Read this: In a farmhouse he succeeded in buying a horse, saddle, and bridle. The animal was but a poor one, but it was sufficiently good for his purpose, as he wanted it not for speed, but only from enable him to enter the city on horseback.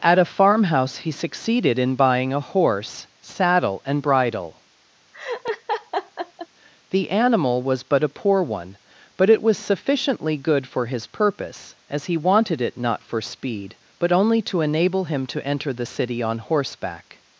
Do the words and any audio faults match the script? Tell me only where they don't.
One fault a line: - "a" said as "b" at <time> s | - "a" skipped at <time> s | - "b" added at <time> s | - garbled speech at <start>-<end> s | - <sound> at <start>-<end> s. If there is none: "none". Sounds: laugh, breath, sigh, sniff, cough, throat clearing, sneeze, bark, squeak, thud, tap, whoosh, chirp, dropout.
- "In" said as "At" at 0.0 s
- laugh at 5.1-6.5 s
- "from" said as "to" at 14.4 s